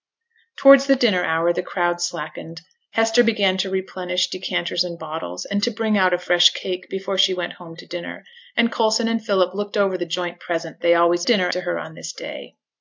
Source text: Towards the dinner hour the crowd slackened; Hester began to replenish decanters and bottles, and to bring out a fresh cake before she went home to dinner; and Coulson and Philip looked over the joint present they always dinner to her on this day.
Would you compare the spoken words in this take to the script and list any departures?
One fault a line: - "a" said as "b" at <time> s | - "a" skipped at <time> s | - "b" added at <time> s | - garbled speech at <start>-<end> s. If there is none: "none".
none